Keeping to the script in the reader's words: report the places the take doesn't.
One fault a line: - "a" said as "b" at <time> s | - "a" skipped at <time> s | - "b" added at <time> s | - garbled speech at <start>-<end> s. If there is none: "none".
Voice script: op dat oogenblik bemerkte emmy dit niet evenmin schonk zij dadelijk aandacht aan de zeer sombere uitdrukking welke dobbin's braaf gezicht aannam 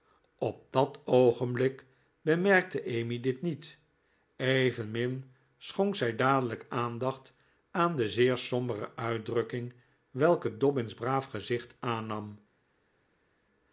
none